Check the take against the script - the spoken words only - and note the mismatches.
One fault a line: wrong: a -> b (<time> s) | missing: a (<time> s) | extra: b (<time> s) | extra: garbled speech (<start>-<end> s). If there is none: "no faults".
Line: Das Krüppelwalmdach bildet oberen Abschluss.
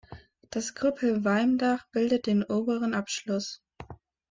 extra: den (2.2 s)